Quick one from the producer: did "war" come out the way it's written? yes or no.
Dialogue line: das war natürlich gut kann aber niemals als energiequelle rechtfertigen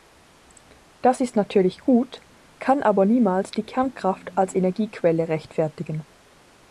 no